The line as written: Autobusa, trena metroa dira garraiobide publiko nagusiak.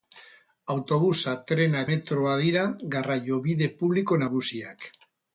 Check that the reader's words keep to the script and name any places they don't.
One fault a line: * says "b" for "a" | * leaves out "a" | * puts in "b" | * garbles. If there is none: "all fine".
all fine